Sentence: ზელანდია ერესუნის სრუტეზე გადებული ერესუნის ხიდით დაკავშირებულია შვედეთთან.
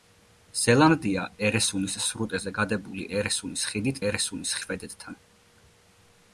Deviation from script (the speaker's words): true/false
true